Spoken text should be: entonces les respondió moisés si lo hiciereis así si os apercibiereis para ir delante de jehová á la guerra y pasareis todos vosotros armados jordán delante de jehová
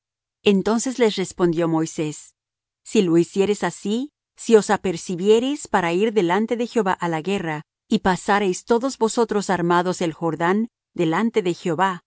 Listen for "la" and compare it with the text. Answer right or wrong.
right